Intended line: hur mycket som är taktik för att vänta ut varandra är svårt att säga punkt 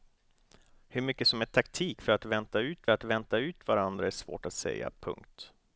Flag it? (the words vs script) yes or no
yes